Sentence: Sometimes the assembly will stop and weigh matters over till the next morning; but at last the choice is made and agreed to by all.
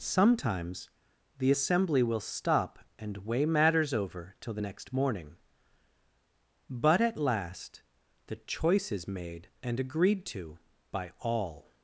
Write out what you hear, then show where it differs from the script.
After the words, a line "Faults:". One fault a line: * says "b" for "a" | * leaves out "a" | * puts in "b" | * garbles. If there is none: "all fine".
Sometimes the assembly will stop and weigh matters over till the next morning; but at last the choice is made and agreed to by all.
Faults:
all fine